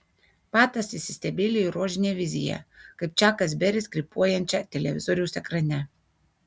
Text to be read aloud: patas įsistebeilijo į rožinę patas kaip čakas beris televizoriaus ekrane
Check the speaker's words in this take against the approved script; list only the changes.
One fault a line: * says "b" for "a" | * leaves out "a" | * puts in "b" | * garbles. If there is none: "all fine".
* says "viziją" for "patas"
* puts in "krypuojančią"